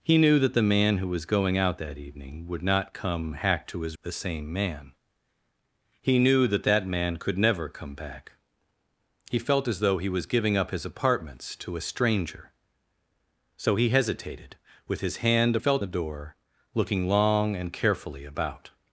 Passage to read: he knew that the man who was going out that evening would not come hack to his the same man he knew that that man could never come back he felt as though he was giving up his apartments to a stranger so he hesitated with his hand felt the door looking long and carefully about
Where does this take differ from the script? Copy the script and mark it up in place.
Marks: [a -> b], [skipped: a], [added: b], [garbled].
he knew that the man who was going out that evening would not come hack to his the same man he knew that that man could never come back he felt as though he was giving up his apartments to a stranger so he hesitated with his hand felt the door looking long and carefully about